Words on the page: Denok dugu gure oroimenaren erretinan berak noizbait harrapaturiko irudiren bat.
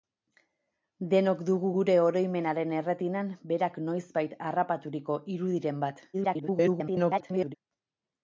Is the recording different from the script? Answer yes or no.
yes